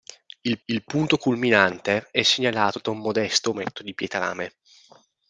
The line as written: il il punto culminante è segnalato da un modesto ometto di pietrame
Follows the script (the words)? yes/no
yes